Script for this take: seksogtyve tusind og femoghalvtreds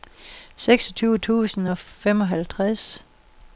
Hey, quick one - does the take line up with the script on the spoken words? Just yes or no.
yes